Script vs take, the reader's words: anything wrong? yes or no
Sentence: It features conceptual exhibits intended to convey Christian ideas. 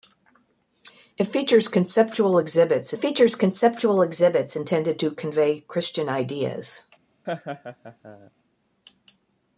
yes